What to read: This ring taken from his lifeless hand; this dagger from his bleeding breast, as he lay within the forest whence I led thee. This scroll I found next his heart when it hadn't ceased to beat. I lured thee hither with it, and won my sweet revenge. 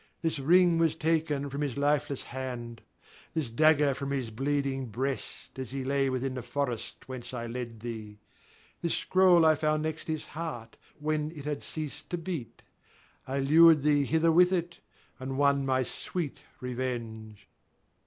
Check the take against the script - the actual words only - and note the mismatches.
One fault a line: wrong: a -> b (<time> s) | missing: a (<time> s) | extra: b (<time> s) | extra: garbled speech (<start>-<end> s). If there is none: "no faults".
extra: was (0.8 s)
wrong: hadn't -> had (11.5 s)